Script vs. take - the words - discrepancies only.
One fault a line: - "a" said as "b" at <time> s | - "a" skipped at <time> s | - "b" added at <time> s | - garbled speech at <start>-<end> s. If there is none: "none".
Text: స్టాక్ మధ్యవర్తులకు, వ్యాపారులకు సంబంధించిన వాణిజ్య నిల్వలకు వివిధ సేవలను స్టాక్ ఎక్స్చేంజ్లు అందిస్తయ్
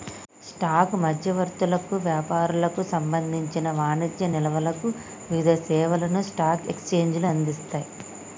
none